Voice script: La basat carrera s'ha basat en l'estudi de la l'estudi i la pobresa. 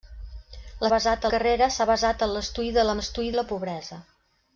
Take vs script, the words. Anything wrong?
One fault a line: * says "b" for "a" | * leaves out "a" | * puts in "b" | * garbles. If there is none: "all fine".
all fine